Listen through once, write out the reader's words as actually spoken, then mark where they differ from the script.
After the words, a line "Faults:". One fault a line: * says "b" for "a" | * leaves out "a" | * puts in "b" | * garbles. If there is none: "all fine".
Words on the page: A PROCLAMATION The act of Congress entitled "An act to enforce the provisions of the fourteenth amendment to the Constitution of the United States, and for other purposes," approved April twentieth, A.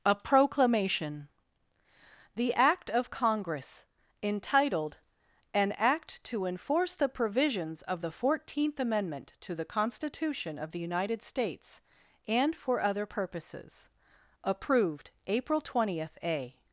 A PROCLAMATION The act of Congress entitled "An act to enforce the provisions of the fourteenth amendment to the Constitution of the United States, and for other purposes," approved April twentieth, A.
Faults:
all fine